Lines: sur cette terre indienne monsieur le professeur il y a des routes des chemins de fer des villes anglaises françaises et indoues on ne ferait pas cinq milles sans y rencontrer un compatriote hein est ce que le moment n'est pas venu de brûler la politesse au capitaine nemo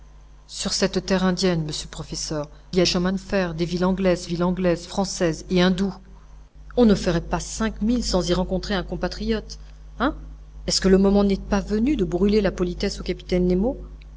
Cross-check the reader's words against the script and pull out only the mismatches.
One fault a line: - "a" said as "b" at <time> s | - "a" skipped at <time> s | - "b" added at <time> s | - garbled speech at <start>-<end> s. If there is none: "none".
- "il" skipped at 2.5 s
- "des routes des" skipped at 2.9 s
- "villes anglaises" added at 4.2 s